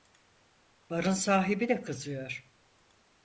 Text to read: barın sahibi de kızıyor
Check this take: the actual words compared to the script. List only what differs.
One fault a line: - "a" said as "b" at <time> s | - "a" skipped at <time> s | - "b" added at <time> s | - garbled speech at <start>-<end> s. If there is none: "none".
none